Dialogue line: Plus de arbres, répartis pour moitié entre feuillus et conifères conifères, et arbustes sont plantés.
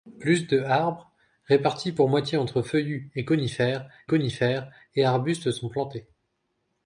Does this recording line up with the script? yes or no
yes